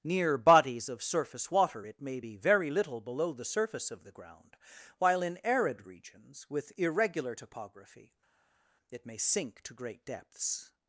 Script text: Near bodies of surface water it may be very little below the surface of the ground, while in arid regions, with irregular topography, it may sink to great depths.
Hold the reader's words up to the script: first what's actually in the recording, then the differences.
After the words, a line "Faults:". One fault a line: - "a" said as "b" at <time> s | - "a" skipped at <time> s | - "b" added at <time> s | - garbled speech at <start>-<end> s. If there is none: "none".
Near bodies of surface water it may be very little below the surface of the ground, while in arid regions, with irregular topography, it may sink to great depths.
Faults:
none